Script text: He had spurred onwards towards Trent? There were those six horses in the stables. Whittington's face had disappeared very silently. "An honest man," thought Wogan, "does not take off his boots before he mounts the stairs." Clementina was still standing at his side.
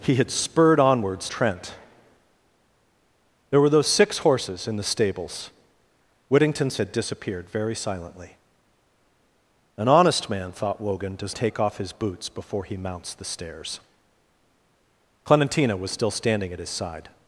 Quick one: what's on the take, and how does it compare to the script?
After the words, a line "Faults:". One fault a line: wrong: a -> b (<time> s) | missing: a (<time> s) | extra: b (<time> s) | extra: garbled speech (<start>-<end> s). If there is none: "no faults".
He had spurred onwards Trent? There were those six horses in the stables. Whittington's had disappeared very silently. "An honest man," thought Wogan, "does take off his boots before he mounts the stairs." Clementina was still standing at his side.
Faults:
missing: towards (1.3 s)
missing: face (6.8 s)
missing: not (11.3 s)